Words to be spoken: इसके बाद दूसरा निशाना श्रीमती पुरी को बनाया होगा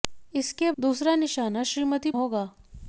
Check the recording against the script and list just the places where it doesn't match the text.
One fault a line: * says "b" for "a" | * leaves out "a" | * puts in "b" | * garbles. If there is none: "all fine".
* leaves out "बाद"
* leaves out "पुरी को बनाया"